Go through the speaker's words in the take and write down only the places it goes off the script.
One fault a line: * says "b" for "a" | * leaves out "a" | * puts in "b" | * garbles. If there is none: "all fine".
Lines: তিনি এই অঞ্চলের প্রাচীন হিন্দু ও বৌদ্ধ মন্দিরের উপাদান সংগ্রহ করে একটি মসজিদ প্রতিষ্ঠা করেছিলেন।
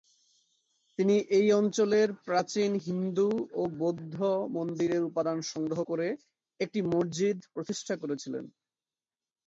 all fine